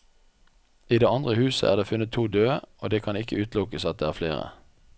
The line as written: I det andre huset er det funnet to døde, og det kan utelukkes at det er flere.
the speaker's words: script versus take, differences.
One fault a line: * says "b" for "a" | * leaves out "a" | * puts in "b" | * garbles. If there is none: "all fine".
* puts in "ikke"